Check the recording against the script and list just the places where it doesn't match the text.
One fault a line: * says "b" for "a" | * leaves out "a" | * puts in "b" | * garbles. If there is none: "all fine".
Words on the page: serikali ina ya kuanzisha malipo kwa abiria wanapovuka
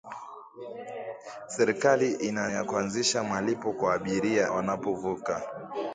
all fine